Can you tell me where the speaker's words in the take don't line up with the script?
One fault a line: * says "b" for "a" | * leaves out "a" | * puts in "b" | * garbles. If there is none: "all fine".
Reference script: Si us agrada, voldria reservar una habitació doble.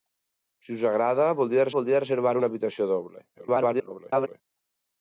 * puts in "voldria"
* garbles